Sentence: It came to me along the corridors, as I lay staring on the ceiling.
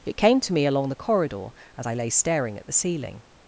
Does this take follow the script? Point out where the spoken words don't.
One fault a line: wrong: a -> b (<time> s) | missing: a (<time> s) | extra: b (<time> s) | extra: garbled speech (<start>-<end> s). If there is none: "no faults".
wrong: corridors -> corridor (0.9 s)
wrong: on -> at (2.6 s)